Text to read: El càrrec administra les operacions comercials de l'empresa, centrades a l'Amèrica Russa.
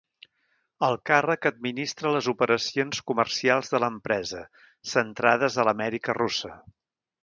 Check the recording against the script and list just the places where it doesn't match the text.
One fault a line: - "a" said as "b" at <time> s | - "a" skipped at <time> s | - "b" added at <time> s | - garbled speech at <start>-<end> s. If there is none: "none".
none